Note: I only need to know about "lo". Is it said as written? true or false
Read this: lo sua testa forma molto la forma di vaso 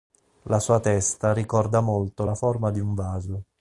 false